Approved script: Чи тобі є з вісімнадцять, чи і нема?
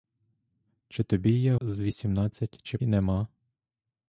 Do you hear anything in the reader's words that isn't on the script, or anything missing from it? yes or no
no